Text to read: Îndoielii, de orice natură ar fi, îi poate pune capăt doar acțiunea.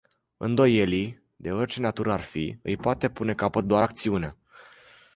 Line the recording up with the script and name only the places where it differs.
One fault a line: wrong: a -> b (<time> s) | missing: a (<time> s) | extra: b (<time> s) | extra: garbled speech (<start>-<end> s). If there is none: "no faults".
no faults